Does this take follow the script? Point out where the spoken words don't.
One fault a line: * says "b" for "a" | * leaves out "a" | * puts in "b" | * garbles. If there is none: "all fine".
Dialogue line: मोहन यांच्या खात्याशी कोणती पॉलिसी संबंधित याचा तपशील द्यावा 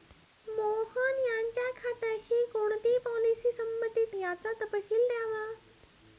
all fine